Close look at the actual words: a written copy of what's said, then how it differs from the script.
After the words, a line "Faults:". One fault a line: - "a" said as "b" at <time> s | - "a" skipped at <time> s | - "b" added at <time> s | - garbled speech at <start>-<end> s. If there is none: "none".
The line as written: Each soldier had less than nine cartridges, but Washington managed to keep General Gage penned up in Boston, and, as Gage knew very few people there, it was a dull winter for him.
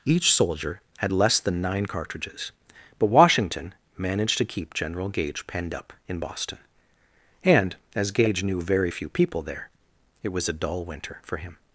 Each soldier had less than nine cartridges, but Washington managed to keep General Gage penned up in Boston, and, as Gage knew very few people there, it was a dull winter for him.
Faults:
none